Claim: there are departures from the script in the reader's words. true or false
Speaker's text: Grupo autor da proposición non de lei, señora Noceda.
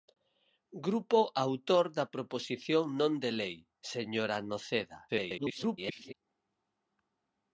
true